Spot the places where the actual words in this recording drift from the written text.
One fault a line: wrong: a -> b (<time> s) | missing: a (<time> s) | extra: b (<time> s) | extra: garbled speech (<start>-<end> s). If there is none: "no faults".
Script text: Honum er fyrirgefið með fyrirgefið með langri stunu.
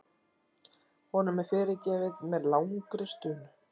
missing: fyrirgefið með (2.5 s)